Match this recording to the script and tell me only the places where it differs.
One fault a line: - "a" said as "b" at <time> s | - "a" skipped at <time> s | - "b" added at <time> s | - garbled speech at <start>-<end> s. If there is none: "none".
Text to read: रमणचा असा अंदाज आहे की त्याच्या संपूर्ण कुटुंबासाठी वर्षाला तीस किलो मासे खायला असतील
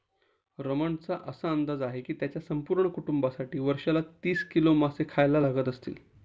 - "लागत" added at 5.4 s